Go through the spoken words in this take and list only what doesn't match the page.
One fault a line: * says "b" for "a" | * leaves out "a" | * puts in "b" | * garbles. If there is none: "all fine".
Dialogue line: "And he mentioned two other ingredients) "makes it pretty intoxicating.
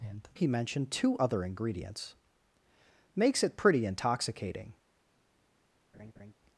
all fine